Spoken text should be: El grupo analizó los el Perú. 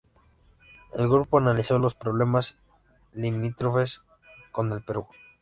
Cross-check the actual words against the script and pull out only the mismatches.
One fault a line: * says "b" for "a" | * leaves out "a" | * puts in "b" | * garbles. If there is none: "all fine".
* puts in "problemas limítrofes con"